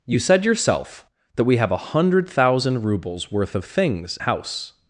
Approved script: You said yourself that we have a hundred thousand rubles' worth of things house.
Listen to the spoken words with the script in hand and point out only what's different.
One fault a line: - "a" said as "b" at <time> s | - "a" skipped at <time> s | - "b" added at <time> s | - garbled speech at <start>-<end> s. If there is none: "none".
none